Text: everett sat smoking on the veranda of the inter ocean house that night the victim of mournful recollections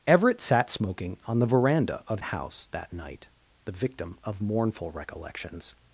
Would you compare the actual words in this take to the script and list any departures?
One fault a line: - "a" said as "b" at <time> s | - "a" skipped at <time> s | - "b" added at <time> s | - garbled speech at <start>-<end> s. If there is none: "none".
- "the inter ocean" skipped at 2.2 s